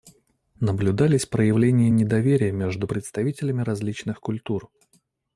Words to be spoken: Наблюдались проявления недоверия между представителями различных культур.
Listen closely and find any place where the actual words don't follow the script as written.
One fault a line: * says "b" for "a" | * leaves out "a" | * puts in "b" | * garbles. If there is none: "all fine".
all fine